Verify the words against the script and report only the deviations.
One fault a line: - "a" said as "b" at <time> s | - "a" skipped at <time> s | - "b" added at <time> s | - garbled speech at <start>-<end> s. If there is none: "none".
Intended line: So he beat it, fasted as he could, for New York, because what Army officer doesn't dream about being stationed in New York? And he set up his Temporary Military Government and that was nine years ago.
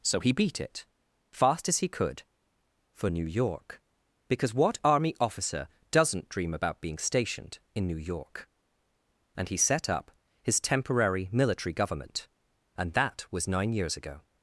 - "fasted" said as "fast" at 1.3 s